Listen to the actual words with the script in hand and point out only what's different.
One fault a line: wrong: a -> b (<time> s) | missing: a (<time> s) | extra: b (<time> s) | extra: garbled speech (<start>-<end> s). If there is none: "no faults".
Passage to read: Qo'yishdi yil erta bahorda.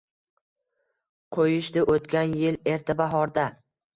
extra: o'tgan (1.9 s)